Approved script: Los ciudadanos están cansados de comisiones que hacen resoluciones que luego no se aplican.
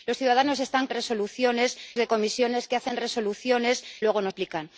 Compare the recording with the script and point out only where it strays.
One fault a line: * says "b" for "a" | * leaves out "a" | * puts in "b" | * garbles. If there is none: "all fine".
* says "resoluciones" for "cansados"
* leaves out "que"
* leaves out "se"